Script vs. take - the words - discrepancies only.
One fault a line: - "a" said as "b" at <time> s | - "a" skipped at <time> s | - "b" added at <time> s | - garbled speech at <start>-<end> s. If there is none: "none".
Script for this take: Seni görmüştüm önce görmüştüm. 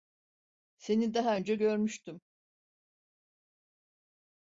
- "görmüştüm" said as "daha" at 1.1 s